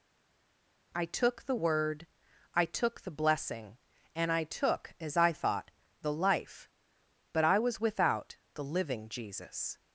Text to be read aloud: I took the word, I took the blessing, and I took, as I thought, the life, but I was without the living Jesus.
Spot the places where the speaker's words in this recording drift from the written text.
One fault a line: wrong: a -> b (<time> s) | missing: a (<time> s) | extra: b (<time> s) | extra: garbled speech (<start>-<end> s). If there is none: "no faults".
no faults